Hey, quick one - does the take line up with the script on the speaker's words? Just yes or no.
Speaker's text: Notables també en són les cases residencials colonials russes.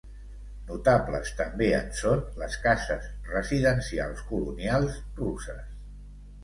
yes